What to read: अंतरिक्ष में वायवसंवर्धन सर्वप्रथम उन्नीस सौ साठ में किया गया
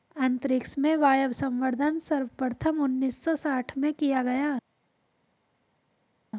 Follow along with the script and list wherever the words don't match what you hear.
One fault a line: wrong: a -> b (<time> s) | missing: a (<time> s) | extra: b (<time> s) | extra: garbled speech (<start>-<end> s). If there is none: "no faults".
no faults